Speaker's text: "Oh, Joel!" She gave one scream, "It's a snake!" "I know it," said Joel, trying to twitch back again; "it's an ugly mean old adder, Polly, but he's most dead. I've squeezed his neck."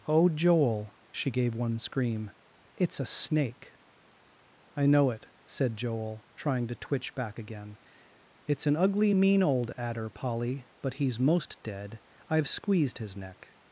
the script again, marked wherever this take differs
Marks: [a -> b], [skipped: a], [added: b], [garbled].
"Oh, Joel!" She gave one scream, "It's a snake!" "I know it," said Joel, trying to twitch back again; "it's an ugly mean old adder, Polly, but he's most dead. I've squeezed his neck."